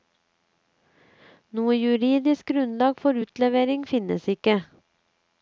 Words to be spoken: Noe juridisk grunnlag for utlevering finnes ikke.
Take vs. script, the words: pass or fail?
pass